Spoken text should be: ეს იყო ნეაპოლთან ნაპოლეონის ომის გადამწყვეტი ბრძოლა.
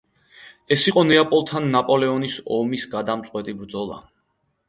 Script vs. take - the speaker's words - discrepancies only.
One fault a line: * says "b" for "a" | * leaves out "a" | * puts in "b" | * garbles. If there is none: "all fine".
all fine